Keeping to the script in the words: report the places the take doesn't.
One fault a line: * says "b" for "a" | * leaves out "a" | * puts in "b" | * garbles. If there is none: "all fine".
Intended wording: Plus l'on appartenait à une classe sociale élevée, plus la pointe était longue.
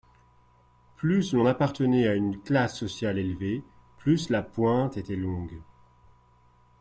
all fine